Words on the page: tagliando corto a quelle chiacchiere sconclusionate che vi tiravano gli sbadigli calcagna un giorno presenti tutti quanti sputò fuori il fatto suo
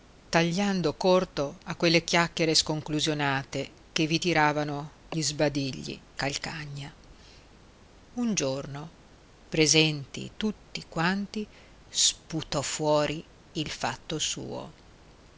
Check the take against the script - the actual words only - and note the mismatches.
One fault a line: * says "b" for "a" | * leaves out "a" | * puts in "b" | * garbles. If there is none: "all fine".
all fine